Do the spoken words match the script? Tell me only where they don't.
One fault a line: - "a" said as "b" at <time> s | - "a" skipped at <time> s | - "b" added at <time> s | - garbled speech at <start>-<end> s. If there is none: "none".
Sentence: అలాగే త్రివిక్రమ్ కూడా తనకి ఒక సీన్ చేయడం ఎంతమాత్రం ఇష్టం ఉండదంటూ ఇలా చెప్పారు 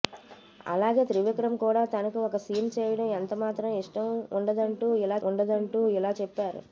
- "ఉండదంటూ ఇలా" added at 5.3 s